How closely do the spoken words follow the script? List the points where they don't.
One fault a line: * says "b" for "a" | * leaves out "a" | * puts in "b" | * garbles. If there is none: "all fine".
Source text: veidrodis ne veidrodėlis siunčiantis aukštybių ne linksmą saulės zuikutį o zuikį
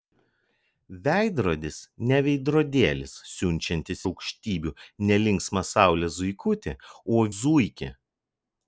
all fine